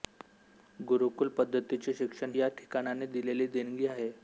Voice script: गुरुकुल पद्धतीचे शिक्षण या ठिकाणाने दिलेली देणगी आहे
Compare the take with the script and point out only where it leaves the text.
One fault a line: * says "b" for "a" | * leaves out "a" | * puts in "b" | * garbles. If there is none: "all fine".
all fine